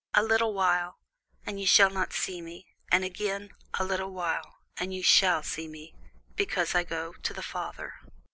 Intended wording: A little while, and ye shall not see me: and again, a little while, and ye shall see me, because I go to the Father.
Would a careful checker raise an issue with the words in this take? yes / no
no